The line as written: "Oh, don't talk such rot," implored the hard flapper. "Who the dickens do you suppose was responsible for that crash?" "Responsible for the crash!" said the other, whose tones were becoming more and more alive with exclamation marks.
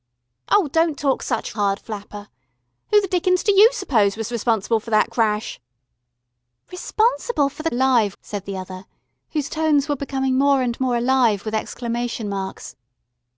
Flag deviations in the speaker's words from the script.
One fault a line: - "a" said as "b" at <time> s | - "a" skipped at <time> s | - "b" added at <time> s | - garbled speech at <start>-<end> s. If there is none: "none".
- "rot implored the" skipped at 1.6 s
- "crash" said as "alive" at 7.7 s